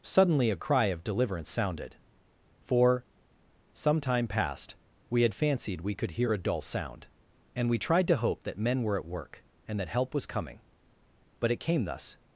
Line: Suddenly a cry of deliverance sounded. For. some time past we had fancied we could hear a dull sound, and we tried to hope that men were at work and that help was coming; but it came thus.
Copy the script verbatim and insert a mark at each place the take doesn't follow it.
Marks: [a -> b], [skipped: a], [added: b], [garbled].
Suddenly a cry of deliverance sounded. For. some time past we had fancied we could hear a dull sound, and we tried to hope that men were at work and that help was coming; but it came thus.